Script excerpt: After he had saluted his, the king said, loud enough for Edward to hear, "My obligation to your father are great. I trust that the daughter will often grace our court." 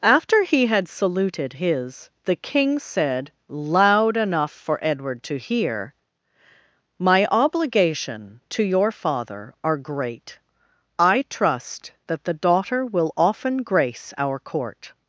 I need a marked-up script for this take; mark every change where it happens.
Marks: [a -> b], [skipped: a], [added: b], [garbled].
After he had saluted his, the king said, loud enough for Edward to hear, "My obligation to your father are great. I trust that the daughter will often grace our court."